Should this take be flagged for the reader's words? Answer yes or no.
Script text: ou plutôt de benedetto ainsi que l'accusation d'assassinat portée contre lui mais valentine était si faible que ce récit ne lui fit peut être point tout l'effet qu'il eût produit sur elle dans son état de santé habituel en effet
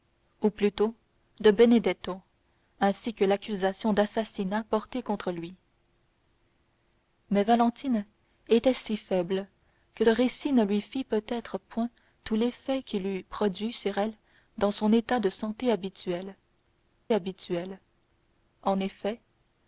yes